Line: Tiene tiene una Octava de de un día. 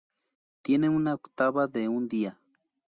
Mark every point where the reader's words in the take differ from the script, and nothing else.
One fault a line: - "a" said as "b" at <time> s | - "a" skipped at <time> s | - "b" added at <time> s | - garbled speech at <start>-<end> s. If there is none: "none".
- "tiene" skipped at 0.9 s
- "de" skipped at 1.9 s